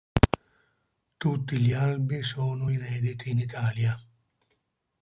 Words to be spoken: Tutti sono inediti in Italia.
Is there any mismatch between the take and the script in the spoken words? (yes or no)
yes